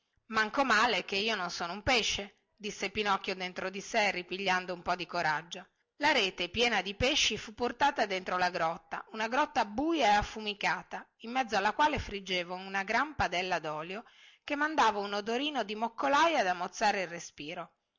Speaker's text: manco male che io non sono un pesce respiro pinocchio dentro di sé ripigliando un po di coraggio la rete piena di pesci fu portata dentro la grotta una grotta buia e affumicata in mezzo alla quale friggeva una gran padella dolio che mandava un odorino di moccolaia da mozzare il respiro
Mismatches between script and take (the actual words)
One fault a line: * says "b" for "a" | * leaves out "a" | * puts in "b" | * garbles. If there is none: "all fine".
* says "disse" for "respiro"